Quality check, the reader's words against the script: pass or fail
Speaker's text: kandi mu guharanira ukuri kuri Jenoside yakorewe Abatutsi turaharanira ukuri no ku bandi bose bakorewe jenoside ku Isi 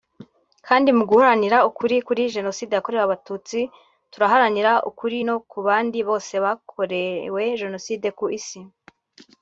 pass